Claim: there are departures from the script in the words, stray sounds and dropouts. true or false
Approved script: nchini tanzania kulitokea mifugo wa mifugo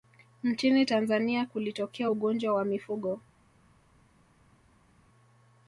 true